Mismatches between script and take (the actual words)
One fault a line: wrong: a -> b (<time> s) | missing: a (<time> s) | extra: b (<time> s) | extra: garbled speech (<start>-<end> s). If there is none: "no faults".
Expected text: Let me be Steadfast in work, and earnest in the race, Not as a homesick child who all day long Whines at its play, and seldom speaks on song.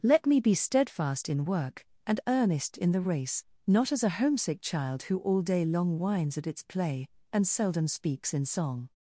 wrong: on -> in (8.3 s)